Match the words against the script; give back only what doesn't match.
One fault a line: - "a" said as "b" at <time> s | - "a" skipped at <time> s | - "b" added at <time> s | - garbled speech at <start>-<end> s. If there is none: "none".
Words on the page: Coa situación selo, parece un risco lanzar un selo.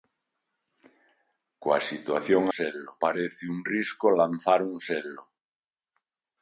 none